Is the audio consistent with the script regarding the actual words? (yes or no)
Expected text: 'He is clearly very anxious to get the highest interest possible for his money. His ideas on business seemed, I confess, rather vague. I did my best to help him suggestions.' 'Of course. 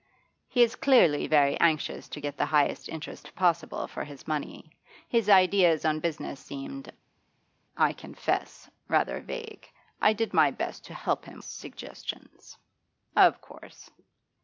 yes